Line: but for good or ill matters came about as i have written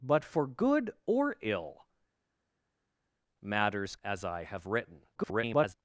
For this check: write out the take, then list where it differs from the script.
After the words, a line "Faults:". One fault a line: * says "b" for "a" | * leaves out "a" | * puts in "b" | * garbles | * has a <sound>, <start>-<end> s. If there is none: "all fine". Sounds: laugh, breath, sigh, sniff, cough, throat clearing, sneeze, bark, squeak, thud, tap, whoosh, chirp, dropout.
but for good or ill matters as i have written [garbled]
Faults:
* leaves out "came about"
* garbles